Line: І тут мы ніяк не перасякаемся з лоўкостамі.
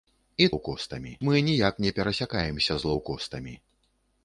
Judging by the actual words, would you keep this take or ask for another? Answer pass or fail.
fail